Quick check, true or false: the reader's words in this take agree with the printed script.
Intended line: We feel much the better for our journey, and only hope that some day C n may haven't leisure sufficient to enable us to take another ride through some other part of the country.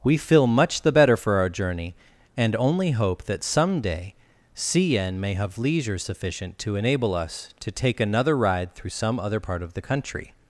false